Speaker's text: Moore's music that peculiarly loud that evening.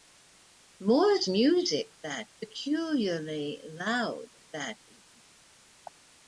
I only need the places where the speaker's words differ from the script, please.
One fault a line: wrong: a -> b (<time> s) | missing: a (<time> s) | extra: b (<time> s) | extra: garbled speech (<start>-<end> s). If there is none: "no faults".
no faults